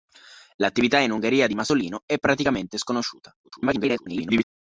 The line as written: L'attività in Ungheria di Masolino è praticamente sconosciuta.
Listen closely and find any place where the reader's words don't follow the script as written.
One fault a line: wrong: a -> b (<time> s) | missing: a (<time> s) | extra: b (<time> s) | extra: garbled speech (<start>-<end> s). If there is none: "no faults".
extra: garbled speech (3.4-4.4 s)